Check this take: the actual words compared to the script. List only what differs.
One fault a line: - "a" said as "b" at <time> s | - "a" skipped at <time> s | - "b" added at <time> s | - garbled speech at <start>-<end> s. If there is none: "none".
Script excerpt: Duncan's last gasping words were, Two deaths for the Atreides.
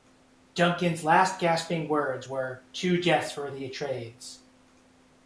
none